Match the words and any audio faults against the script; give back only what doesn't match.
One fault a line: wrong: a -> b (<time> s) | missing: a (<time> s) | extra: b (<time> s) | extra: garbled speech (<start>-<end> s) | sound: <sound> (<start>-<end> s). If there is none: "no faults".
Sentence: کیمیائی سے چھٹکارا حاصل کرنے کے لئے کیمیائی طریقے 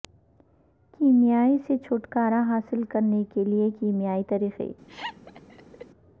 sound: laugh (4.9-5.9 s)